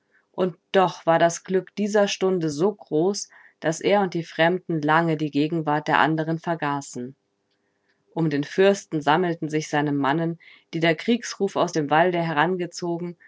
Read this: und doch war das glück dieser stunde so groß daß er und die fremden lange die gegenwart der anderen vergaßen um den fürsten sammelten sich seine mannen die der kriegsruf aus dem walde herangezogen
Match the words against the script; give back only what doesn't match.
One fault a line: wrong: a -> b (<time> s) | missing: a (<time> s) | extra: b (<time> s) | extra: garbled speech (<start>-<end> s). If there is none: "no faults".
no faults